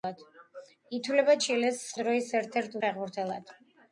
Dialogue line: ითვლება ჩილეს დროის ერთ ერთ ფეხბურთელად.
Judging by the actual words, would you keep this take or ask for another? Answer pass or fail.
pass